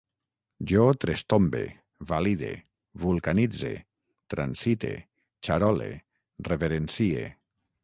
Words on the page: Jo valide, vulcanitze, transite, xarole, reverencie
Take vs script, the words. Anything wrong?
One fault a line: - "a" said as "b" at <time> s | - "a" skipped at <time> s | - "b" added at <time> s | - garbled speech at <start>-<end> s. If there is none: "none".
- "trestombe" added at 1.0 s